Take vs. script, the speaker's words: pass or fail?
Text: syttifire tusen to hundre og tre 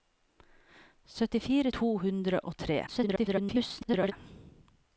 fail